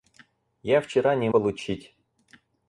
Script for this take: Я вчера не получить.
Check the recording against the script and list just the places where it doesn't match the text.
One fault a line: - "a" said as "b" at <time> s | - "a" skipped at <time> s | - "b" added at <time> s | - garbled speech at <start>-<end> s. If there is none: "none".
none